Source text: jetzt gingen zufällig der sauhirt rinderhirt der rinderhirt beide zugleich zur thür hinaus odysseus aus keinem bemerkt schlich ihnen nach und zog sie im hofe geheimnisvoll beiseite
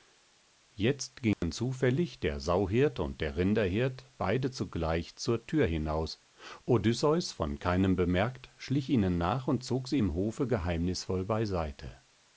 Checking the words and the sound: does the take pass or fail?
fail